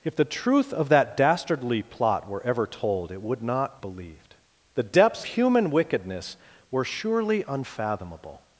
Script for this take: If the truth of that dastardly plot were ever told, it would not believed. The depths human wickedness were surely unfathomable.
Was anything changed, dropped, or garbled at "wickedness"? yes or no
no